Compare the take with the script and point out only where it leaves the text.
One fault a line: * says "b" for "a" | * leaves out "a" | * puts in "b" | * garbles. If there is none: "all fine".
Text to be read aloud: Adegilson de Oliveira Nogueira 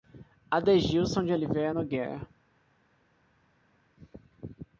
all fine